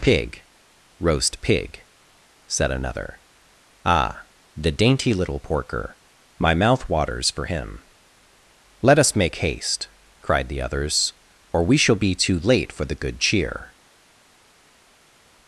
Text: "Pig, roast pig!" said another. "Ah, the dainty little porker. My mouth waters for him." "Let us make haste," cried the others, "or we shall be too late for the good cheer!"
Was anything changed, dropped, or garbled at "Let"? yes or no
no